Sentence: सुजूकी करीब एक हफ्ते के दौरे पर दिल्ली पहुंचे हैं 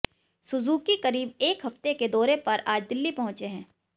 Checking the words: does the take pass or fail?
fail